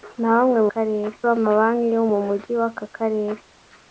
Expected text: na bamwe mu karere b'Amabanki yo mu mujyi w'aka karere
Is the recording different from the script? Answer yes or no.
no